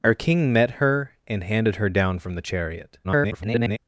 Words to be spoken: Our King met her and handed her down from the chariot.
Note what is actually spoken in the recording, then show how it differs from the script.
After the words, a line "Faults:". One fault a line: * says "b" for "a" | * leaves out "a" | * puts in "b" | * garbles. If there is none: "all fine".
Our King met her and handed her down from the chariot. [garbled]
Faults:
* garbles